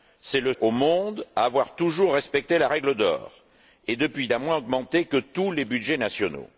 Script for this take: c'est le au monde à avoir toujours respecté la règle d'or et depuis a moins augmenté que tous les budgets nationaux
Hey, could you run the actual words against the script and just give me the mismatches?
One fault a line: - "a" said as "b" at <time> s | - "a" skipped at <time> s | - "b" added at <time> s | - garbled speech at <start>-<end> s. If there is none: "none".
none